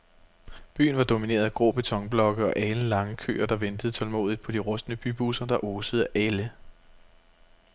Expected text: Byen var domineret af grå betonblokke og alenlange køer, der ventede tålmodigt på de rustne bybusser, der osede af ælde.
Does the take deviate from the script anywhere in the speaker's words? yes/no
no